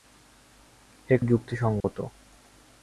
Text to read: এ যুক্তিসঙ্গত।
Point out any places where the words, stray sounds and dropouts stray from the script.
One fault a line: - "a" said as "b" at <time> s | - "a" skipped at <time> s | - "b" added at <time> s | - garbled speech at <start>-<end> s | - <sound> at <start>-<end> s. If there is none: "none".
- dropout at 1.8-1.8 s